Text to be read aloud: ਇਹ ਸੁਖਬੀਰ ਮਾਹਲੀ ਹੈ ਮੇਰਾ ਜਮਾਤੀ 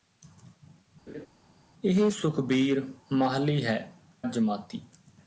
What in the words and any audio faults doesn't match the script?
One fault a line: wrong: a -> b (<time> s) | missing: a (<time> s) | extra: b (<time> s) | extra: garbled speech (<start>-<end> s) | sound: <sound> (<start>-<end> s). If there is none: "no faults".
sound: laugh (1.1-1.3 s)
missing: ਮੇਰਾ (3.8 s)